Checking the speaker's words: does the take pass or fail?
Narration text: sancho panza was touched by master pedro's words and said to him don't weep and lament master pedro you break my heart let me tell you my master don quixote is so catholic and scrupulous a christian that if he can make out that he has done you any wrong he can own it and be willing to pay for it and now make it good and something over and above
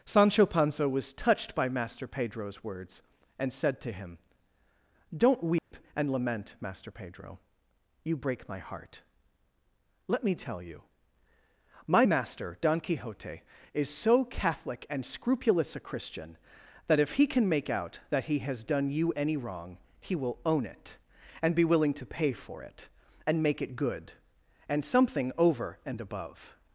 fail